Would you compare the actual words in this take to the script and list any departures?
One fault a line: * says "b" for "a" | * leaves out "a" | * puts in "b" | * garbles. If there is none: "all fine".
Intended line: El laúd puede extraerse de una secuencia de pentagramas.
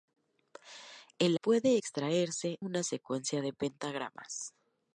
* leaves out "laúd"
* leaves out "de"